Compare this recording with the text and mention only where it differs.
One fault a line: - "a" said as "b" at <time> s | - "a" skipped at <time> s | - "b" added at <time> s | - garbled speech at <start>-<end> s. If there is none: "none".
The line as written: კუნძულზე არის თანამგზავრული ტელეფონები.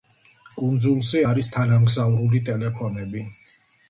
none